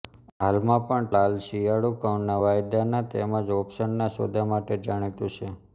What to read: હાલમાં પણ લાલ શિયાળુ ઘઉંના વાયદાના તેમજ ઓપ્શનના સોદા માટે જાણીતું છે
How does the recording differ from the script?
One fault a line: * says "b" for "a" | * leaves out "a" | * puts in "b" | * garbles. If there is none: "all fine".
all fine